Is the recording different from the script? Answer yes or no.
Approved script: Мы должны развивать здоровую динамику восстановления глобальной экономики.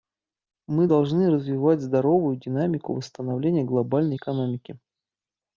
no